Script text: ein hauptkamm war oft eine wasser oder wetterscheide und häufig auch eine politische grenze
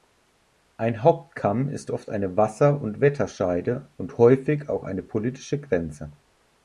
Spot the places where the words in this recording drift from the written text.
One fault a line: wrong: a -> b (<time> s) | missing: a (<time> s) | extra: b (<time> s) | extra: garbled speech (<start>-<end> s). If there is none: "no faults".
wrong: war -> ist (1.7 s)
wrong: oder -> und (2.8 s)